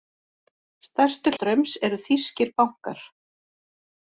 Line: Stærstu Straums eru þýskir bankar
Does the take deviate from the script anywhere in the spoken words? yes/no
no